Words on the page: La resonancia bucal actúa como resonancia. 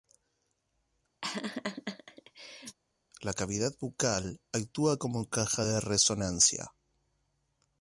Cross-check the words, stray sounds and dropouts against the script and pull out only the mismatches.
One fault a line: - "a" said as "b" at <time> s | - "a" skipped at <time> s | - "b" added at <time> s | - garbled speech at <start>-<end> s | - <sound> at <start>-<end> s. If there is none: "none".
- laugh at 1.2-2.8 s
- "resonancia" said as "cavidad" at 3.3 s
- "caja de" added at 5.3 s